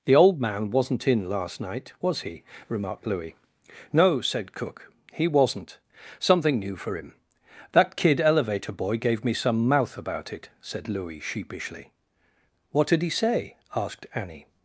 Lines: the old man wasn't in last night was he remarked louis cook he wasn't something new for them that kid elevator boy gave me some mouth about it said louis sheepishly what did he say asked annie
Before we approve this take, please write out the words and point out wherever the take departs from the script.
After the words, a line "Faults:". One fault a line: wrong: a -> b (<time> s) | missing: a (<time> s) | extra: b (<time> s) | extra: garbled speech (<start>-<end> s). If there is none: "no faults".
the old man wasn't in last night was he remarked louis no said cook he wasn't something new for him that kid elevator boy gave me some mouth about it said louis sheepishly what did he say asked annie
Faults:
extra: no said (3.9 s)
wrong: them -> him (7.0 s)